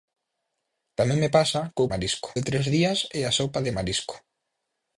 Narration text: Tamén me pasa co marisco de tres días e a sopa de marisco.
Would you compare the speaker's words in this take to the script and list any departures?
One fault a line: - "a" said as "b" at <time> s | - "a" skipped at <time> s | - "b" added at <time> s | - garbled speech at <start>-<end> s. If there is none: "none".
none